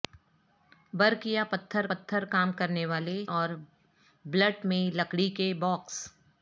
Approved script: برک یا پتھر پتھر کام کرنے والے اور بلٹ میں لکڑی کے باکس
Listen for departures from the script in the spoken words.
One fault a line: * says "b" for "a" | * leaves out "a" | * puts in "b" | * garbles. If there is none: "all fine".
all fine